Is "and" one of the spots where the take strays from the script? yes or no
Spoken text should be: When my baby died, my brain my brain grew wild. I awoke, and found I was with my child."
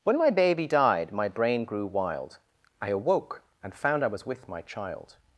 no